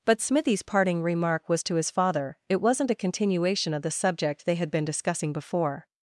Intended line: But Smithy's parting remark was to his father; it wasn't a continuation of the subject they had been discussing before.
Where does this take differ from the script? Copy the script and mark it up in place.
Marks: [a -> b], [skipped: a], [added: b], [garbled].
But Smithy's parting remark was to his father; it wasn't a continuation of the subject they had been discussing before.